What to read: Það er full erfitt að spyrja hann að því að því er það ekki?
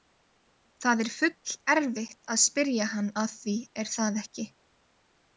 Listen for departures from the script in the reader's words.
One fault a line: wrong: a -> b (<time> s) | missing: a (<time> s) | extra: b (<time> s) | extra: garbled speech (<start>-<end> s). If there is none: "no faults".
missing: að því (3.6 s)